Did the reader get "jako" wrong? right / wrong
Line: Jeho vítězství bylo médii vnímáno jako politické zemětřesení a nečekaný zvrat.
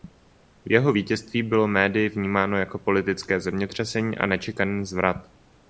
right